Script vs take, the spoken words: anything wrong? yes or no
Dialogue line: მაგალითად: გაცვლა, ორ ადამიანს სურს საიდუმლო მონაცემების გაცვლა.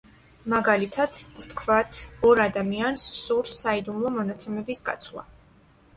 yes